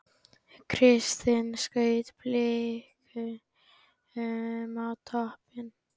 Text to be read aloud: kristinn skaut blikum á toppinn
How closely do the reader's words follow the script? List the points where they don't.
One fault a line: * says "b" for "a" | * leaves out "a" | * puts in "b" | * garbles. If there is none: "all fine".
all fine